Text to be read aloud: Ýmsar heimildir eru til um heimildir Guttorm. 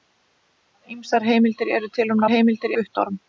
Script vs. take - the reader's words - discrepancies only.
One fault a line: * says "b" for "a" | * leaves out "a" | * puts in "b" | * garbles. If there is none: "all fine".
all fine